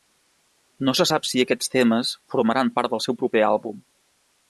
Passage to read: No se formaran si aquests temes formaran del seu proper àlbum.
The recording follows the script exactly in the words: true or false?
false